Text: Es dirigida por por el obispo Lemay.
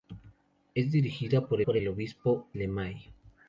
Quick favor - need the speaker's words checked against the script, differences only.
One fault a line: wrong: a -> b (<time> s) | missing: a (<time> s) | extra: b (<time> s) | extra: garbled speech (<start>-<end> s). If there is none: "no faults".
no faults